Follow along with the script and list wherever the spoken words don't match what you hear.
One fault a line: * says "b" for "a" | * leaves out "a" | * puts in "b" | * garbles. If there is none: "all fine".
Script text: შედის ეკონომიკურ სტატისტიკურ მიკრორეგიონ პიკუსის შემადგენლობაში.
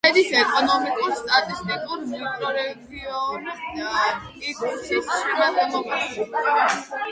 all fine